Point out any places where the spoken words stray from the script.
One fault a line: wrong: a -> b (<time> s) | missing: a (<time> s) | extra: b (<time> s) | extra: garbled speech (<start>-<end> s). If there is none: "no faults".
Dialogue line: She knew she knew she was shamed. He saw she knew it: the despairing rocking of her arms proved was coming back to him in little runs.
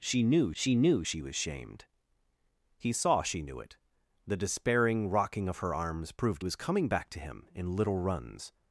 no faults